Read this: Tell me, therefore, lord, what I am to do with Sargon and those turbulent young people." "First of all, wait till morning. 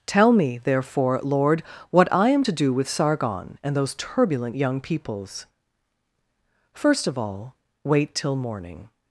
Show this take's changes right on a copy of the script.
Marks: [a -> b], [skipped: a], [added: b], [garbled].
Tell me, therefore, lord, what I am to do with Sargon and those turbulent young [people." -> peoples] "First of all, wait till morning.